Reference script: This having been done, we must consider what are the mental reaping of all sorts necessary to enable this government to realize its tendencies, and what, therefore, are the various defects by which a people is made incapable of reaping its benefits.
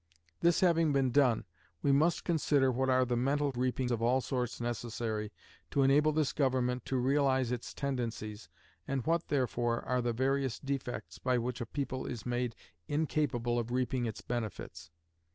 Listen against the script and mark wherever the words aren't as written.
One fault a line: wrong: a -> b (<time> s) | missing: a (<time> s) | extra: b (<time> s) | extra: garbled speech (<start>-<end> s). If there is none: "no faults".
no faults